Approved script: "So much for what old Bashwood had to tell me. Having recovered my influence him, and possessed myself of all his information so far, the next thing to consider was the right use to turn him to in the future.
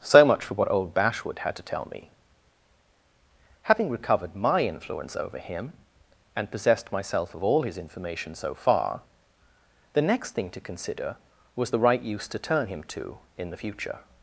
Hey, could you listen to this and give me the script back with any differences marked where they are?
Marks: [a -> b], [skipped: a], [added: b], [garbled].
"So much for what old Bashwood had to tell me. Having recovered my influence [added: over] him, and possessed myself of all his information so far, the next thing to consider was the right use to turn him to in the future.